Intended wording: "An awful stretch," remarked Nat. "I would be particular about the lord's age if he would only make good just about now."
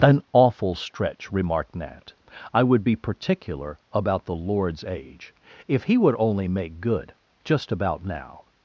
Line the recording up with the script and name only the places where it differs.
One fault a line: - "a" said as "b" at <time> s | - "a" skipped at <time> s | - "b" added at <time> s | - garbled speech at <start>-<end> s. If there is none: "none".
none